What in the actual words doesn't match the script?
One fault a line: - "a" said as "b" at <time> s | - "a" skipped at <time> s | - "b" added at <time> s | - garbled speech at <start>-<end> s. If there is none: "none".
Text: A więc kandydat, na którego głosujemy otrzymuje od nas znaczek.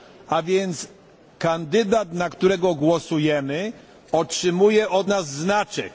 none